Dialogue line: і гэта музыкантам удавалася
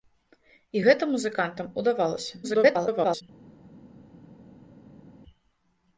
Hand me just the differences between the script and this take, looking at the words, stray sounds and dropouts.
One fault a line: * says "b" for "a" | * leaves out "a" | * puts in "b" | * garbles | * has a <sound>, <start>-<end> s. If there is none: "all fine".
* garbles